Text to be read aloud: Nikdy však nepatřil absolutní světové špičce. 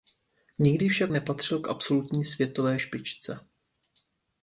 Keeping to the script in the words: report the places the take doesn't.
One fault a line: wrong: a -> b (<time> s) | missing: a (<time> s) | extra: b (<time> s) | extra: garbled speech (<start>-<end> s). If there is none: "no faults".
extra: k (1.6 s)